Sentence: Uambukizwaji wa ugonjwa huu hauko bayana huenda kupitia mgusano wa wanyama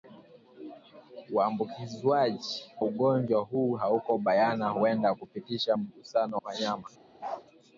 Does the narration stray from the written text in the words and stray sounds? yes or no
yes